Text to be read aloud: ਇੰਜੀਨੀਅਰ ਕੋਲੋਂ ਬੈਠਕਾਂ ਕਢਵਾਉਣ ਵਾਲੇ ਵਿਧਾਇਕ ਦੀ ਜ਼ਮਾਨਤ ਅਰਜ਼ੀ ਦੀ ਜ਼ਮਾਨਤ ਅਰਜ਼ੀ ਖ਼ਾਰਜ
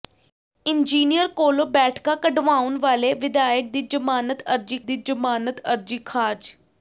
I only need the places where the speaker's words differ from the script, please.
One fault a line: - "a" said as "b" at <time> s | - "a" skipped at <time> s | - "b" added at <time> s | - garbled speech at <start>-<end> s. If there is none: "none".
none